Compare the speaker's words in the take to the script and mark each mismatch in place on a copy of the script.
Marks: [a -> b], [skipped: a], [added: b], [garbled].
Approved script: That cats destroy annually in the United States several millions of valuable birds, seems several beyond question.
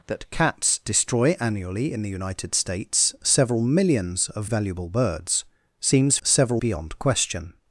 That cats destroy annually in the United States several millions of valuable birds, seems several beyond question.